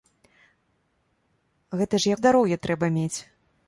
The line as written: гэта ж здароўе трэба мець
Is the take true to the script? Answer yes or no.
yes